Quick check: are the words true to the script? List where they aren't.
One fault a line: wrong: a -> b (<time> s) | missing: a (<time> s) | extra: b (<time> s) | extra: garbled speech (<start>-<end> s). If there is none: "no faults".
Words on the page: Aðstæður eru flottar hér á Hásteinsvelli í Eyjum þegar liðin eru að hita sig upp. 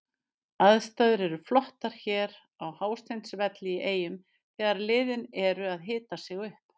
no faults